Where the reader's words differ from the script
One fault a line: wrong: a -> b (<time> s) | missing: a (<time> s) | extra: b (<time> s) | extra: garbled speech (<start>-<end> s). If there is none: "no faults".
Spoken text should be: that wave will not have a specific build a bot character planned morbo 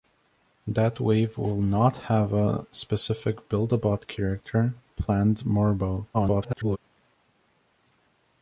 extra: garbled speech (6.1-6.8 s)